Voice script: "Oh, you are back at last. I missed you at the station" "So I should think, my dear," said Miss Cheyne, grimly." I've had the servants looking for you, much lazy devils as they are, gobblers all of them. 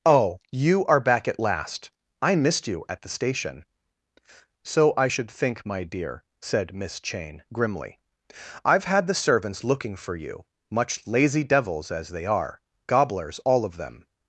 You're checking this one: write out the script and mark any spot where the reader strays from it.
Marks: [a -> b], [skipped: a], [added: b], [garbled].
"Oh, you are back at last. I missed you at the station" "So I should think, my dear," said Miss Cheyne, grimly." I've had the servants looking for you, much lazy devils as they are, gobblers all of them.